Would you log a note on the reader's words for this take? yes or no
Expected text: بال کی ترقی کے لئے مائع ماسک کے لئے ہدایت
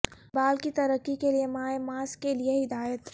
no